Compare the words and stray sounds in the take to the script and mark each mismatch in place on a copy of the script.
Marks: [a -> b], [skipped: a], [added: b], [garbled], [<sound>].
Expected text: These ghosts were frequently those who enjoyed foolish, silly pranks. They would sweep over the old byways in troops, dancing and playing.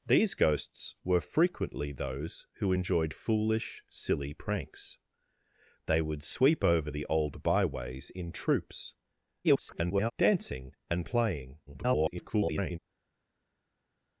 These ghosts were frequently those who enjoyed foolish, silly pranks. They would sweep over the old byways in troops, [garbled] dancing and playing. [garbled]